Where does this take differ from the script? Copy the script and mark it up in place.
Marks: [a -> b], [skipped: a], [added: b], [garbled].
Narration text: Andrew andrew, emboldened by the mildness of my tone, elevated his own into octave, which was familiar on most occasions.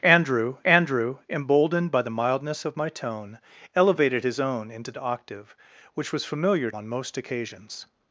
Andrew andrew, emboldened by the mildness of my tone, elevated his own into octave, which was familiar on most occasions.